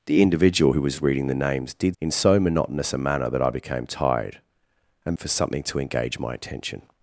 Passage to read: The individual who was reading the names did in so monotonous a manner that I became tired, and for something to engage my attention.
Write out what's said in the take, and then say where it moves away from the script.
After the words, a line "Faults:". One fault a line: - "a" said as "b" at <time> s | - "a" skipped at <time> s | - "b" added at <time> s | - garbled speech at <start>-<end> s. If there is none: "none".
The individual who was reading the names did in so monotonous a manner that I became tired, and for something to engage my attention.
Faults:
none